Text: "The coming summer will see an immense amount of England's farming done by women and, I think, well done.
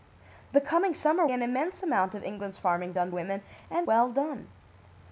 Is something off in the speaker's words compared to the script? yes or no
yes